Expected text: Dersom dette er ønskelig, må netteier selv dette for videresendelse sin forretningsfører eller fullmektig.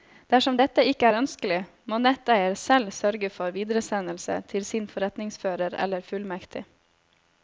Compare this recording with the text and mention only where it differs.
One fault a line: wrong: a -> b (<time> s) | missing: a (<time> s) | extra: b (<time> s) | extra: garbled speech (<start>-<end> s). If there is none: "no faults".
extra: ikke (0.9 s)
wrong: dette -> sørge (3.0 s)
extra: til (4.5 s)